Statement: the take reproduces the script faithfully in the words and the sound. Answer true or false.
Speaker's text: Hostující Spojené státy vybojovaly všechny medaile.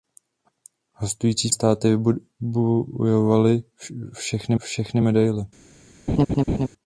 false